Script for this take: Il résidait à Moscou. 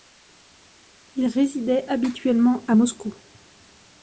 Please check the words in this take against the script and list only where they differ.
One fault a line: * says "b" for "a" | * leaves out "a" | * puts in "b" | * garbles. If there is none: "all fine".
* puts in "habituellement"